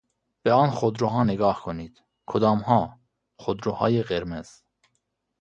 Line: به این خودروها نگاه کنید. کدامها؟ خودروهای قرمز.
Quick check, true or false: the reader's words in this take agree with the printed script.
false